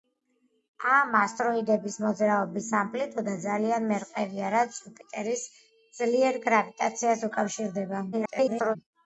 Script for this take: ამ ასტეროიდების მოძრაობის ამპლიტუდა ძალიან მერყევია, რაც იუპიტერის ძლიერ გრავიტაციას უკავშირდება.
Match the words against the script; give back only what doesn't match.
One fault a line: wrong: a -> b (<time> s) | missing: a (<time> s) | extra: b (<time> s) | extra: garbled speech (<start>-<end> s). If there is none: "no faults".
extra: garbled speech (8.1-8.8 s)